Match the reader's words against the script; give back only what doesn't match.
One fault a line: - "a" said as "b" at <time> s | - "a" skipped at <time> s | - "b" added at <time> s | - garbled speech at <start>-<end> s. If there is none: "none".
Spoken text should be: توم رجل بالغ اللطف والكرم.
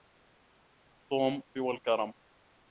- "رجل بالغ اللطف" skipped at 1.4 s